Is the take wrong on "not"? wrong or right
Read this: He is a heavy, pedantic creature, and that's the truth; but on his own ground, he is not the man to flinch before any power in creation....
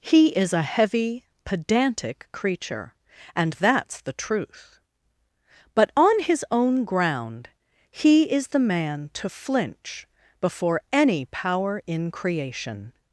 wrong